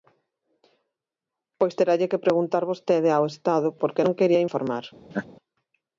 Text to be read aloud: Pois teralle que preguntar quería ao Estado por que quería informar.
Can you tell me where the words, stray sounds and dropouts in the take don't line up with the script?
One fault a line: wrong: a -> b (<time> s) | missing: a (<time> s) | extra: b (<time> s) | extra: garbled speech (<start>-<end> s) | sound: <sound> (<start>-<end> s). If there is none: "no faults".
wrong: quería -> vostede (2.7 s)
extra: non (4.0 s)
sound: laugh (5.1-5.3 s)